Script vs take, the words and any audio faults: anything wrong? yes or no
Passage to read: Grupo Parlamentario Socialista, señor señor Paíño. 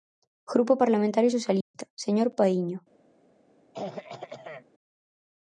yes